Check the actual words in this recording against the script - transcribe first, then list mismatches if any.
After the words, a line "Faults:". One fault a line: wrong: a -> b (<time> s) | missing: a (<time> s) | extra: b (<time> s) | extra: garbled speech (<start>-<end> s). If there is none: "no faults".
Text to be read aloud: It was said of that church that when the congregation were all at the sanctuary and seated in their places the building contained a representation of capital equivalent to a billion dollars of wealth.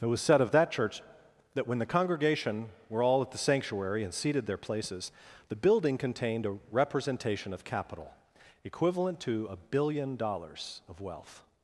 It was said of that church that when the congregation were all at the sanctuary and seated their places the building contained a representation of capital equivalent to a billion dollars of wealth.
Faults:
missing: in (4.5 s)